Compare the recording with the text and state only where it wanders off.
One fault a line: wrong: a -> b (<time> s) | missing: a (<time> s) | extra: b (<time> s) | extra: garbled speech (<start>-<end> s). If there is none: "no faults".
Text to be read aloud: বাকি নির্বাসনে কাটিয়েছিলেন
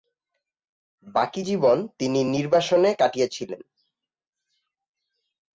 extra: জীবন তিনি (1.4 s)